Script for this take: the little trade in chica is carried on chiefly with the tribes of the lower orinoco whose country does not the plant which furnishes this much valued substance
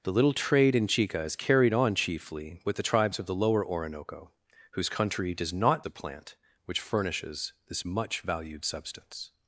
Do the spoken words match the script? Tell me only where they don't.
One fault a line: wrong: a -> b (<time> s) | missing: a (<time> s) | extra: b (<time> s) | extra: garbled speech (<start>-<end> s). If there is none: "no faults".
no faults